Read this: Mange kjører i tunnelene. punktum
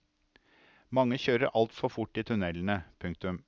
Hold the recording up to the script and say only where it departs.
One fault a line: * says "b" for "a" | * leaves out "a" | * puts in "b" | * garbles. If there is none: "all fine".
* puts in "altfor fort"